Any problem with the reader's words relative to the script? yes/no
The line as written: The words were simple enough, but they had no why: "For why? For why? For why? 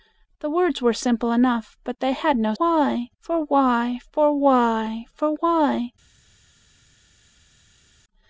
no